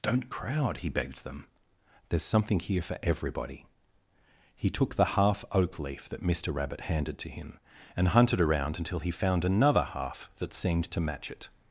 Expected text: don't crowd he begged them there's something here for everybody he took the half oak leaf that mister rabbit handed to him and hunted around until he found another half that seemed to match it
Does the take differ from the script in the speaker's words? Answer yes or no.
no